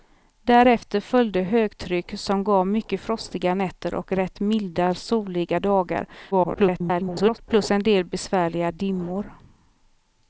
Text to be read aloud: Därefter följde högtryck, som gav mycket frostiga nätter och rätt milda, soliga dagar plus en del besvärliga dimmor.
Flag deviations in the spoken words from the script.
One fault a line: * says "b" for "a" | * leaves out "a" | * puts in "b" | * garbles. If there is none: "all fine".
* garbles